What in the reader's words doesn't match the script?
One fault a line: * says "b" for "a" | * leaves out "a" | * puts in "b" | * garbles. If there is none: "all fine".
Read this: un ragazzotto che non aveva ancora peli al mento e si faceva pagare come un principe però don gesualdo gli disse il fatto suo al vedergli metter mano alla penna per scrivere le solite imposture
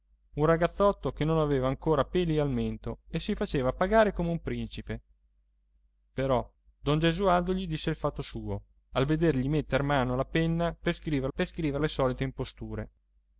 * puts in "per scrivere"